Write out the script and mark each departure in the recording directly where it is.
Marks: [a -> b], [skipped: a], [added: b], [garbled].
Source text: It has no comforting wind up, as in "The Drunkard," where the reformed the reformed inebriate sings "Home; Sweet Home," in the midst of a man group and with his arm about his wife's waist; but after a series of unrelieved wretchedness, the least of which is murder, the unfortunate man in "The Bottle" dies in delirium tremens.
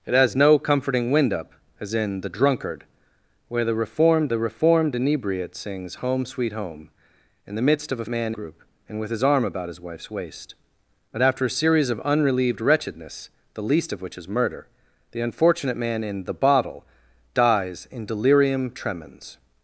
It has no comforting wind up, as in "The Drunkard," where the reformed the reformed inebriate sings "Home; Sweet Home," in the midst of a man group and with his arm about his wife's waist; but after a series of unrelieved wretchedness, the least of which is murder, the unfortunate man in "The Bottle" dies in delirium tremens.